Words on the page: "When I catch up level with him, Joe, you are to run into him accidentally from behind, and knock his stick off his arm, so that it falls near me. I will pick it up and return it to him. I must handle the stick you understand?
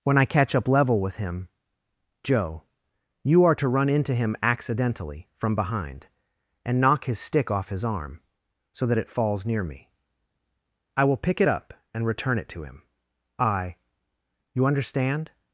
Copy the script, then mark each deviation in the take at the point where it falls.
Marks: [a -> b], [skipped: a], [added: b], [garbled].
"When I catch up level with him, Joe, you are to run into him accidentally from behind, and knock his stick off his arm, so that it falls near me. I will pick it up and return it to him. I [skipped: must handle the stick] you understand?